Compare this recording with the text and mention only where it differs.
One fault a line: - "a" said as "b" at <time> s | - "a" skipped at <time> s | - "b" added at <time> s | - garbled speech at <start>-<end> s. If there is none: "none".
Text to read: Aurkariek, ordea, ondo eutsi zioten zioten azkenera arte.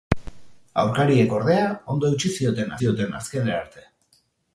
none